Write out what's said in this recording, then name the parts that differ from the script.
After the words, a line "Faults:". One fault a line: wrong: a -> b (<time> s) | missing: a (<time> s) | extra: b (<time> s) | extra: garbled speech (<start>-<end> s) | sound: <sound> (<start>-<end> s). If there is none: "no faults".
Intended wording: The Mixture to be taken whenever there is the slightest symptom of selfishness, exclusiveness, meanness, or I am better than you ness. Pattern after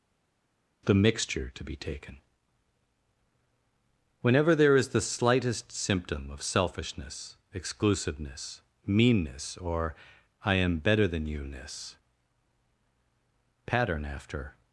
The Mixture to be taken whenever there is the slightest symptom of selfishness, exclusiveness, meanness, or I am better than you ness. Pattern after
Faults:
no faults